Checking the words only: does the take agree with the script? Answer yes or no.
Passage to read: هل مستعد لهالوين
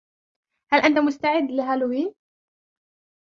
no